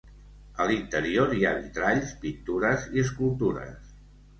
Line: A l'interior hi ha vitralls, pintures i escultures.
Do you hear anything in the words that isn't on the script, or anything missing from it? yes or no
no